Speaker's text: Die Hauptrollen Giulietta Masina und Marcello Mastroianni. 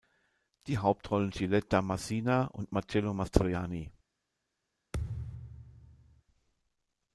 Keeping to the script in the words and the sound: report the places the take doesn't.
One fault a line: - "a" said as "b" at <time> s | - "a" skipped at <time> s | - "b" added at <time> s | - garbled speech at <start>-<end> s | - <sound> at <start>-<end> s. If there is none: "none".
- thud at 4.9-6.2 s